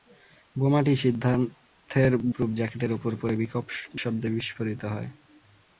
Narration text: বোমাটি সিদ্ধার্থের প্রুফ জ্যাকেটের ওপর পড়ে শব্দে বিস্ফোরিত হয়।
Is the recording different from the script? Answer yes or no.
no